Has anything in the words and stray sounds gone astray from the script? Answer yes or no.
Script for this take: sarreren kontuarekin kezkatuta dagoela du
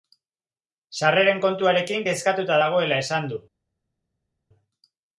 yes